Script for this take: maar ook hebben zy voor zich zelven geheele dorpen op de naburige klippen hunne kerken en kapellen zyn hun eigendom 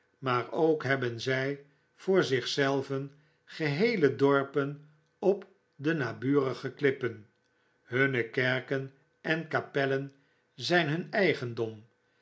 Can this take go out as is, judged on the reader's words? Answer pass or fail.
pass